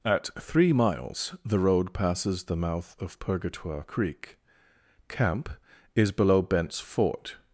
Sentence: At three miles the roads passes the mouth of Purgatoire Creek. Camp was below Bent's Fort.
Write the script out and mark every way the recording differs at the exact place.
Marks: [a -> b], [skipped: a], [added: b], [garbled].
At three miles the [roads -> road] passes the mouth of Purgatoire Creek. Camp [was -> is] below Bent's Fort.